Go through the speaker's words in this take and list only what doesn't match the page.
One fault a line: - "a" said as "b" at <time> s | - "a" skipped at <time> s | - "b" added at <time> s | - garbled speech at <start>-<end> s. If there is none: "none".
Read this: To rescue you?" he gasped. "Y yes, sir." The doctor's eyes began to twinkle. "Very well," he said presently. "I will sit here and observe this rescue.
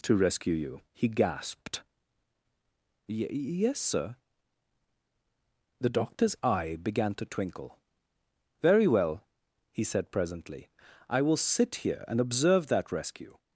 - "eyes" said as "eye" at 6.4 s
- "this" said as "that" at 12.7 s